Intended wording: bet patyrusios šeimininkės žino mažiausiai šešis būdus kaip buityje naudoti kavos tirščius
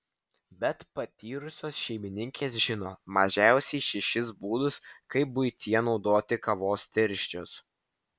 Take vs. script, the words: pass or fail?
pass